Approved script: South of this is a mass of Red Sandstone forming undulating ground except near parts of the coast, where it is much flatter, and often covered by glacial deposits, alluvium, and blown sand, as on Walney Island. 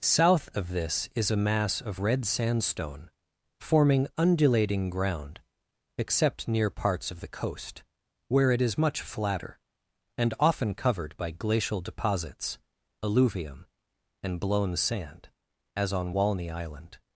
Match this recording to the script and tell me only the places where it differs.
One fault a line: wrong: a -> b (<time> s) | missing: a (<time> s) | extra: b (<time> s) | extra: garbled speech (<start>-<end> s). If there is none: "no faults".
no faults